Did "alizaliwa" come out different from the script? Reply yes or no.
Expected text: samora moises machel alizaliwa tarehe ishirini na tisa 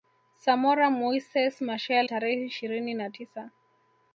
yes